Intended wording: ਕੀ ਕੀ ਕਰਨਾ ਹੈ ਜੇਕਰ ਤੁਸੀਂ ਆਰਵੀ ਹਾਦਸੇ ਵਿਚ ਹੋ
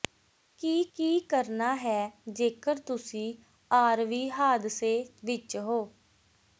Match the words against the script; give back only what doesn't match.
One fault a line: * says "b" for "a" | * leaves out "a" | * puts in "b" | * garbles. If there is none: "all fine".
all fine